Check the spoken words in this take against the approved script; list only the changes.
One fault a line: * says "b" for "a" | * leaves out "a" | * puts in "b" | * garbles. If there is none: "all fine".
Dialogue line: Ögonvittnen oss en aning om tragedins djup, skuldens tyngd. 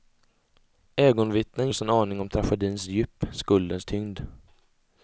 all fine